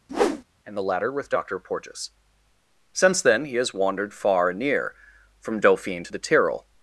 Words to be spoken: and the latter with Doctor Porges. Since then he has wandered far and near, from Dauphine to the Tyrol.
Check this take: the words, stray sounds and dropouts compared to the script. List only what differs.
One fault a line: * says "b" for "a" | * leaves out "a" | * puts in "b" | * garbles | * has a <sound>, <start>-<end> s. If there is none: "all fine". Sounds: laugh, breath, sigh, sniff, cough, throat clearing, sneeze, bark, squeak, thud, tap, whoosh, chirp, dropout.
* has a whoosh, 0.1-0.4 s